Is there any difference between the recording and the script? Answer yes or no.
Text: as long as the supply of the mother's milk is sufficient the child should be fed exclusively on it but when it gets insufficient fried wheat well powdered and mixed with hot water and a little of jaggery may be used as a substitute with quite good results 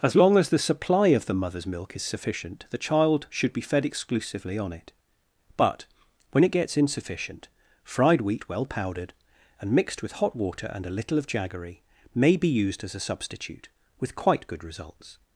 no